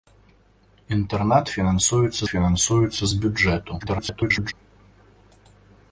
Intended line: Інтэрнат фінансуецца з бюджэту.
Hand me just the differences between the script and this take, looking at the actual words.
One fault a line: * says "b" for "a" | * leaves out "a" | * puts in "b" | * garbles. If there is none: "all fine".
* puts in "фінансуецца"
* garbles